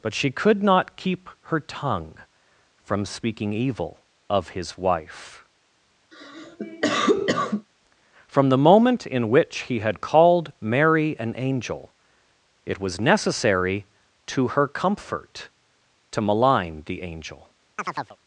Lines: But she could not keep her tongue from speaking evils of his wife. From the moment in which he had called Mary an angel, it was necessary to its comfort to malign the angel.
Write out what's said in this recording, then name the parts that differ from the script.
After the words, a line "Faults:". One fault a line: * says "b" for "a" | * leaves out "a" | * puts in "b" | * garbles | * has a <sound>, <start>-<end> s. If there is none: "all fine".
But she could not keep her tongue from speaking evil of his wife. From the moment in which he had called Mary an angel, it was necessary to her comfort to malign the angel.
Faults:
* says "evil" for "evils"
* has a cough, 6.1-7.7 s
* says "her" for "its"
* has a chirp, 17.8-18.2 s